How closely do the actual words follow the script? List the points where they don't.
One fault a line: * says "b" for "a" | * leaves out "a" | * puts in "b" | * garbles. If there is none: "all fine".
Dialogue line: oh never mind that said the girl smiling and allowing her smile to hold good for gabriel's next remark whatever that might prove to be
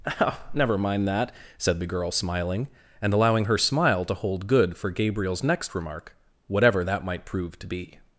all fine